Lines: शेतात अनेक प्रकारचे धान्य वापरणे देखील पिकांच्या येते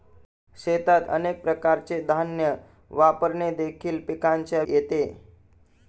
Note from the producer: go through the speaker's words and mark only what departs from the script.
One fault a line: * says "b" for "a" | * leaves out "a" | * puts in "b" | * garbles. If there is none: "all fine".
all fine